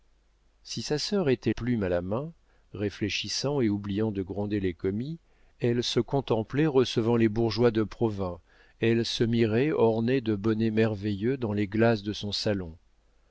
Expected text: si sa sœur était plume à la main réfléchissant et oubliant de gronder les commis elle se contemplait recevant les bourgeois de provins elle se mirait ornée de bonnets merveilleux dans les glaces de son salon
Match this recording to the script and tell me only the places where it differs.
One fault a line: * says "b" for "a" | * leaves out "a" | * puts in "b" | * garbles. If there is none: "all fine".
all fine